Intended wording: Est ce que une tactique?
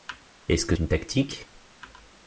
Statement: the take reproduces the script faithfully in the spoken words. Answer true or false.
true